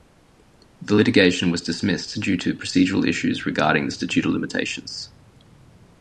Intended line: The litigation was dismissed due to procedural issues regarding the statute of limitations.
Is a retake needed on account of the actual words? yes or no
no